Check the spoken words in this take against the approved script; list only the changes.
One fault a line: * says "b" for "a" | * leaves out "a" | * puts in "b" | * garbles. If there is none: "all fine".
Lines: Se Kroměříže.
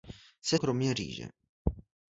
all fine